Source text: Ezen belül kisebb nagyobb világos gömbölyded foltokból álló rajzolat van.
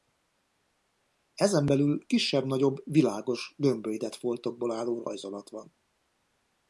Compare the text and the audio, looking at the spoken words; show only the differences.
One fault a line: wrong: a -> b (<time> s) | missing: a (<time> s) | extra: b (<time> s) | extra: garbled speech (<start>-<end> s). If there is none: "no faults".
no faults